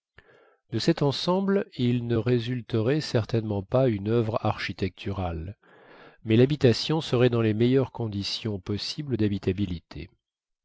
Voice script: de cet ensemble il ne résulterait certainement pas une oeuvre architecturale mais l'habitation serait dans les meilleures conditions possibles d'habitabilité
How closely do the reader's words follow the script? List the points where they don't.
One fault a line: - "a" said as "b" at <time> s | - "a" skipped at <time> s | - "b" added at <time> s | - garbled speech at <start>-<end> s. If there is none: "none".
none